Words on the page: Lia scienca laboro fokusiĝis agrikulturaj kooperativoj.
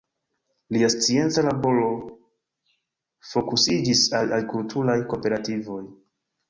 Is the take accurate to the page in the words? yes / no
no